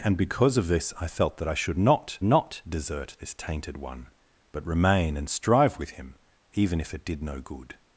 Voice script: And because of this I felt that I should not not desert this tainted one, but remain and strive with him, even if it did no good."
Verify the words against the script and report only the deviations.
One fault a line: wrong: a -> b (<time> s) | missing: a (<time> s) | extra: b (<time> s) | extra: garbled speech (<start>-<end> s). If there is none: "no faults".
no faults